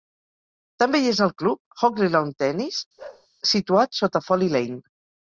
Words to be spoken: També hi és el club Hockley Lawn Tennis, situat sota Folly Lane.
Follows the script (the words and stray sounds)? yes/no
no